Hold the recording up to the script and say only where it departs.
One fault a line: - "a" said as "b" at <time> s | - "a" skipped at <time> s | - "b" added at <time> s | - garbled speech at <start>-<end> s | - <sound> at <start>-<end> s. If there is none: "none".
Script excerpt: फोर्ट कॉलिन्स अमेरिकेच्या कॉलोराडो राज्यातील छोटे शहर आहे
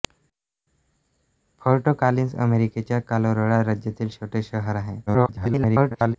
- garbled speech at 5.1-6.2 s